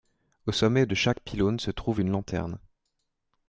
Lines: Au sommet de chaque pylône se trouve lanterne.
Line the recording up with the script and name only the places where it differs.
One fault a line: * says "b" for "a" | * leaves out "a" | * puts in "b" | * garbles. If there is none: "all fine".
* puts in "une"